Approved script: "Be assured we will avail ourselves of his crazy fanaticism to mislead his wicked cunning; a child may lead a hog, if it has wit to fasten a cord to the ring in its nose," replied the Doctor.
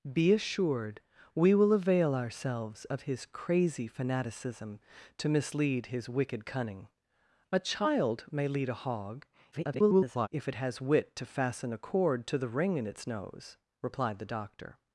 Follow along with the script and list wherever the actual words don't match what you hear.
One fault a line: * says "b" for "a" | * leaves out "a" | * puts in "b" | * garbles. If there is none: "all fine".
* garbles